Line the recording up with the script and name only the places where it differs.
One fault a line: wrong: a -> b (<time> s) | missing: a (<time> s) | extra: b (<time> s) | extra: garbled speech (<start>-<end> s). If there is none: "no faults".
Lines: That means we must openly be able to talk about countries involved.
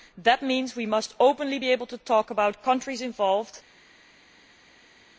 no faults